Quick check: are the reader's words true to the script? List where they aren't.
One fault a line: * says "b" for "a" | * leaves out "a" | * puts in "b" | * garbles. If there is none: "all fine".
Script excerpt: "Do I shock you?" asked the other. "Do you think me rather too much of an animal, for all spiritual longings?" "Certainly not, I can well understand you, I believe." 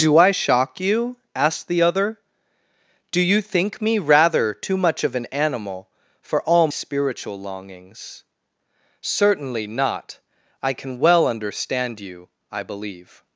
all fine